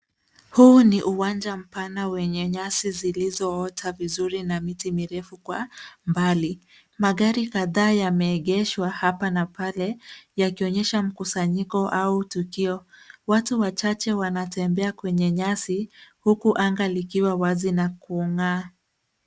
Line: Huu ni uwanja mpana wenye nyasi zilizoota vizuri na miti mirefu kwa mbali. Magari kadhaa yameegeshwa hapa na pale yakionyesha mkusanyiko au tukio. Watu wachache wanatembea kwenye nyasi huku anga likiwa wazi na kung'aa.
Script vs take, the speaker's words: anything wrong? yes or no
no